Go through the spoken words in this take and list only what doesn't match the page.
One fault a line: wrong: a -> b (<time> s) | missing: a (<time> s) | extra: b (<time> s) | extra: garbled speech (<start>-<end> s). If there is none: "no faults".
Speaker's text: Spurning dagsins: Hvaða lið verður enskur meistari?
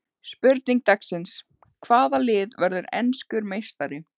no faults